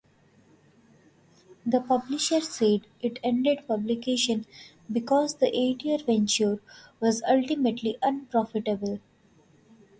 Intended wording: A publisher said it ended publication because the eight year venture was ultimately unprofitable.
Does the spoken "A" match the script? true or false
false